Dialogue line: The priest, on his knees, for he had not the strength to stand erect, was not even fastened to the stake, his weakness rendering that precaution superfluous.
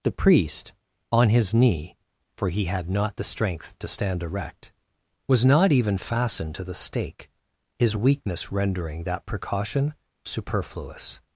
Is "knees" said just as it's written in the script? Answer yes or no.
no